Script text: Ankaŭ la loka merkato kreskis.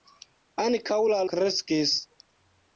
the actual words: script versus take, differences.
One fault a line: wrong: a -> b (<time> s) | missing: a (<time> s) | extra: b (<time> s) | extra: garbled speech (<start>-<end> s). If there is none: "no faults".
missing: loka merkato (1.2 s)